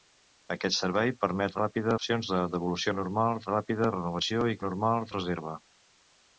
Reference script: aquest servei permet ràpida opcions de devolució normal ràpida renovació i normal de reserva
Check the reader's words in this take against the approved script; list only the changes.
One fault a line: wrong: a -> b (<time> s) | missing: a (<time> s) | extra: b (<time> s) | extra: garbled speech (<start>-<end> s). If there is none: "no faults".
no faults